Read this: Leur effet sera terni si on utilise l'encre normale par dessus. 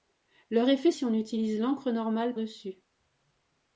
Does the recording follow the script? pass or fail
fail